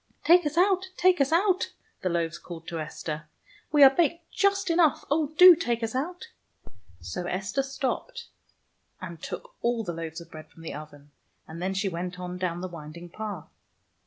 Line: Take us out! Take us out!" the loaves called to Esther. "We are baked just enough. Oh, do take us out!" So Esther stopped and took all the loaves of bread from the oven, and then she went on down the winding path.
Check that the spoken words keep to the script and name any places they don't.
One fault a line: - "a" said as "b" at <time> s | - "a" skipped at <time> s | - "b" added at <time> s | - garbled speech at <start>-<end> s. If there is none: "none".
none